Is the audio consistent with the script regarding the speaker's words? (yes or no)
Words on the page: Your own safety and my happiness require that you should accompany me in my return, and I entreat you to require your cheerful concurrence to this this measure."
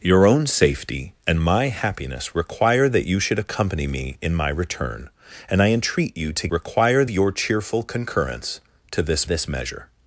yes